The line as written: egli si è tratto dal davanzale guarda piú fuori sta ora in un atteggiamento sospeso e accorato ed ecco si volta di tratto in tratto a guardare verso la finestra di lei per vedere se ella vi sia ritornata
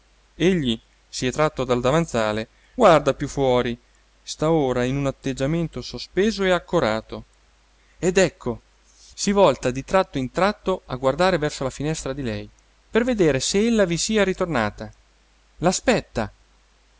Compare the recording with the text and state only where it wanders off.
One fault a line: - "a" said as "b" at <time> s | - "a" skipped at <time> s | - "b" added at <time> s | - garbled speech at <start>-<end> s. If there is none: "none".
none